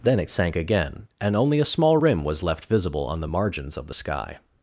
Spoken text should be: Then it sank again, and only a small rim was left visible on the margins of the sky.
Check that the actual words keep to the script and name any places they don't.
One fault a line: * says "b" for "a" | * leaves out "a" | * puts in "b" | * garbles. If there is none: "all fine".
all fine